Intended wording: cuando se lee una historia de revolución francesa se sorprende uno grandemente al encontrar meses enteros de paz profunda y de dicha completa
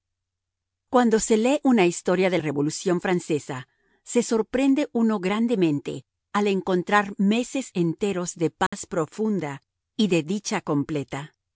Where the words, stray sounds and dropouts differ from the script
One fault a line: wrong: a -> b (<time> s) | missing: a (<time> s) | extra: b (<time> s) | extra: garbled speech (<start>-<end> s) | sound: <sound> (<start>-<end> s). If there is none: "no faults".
sound: dropout (8.7-8.7 s)